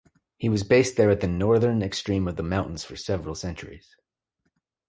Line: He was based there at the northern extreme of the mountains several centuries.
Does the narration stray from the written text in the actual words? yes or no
yes